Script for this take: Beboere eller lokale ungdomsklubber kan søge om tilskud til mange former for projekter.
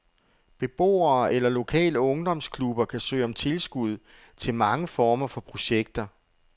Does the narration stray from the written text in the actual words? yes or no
no